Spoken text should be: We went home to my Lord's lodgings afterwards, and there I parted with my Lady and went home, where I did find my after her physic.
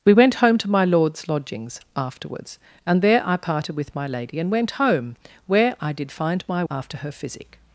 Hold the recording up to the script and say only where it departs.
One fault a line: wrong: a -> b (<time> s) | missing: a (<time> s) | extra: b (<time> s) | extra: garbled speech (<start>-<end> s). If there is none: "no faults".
no faults